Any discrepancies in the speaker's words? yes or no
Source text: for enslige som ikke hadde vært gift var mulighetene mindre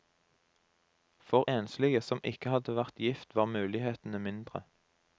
no